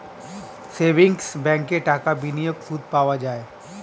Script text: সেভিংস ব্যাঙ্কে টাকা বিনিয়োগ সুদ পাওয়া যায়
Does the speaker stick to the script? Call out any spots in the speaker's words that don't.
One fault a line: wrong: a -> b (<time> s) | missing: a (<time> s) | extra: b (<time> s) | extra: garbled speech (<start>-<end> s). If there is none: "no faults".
no faults